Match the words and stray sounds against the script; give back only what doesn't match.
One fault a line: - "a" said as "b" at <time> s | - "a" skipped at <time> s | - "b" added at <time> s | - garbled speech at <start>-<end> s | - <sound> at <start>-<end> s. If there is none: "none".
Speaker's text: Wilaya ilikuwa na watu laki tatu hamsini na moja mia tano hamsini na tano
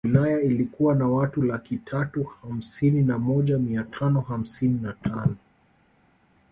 none